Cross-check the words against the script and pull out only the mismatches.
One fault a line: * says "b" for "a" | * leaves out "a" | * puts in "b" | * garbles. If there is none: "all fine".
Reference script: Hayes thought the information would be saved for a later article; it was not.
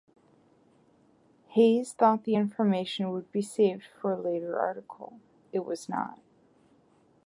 all fine